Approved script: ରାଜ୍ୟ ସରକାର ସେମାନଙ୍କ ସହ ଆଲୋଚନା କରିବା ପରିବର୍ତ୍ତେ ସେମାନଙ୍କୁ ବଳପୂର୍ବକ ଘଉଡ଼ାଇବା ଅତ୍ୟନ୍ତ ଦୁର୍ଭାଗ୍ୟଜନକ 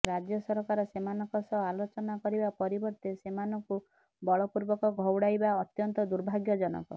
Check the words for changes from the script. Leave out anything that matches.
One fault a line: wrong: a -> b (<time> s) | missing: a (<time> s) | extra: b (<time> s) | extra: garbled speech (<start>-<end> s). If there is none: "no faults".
no faults